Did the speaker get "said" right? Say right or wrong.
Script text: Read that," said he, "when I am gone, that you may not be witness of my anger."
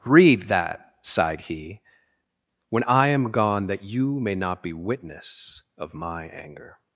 wrong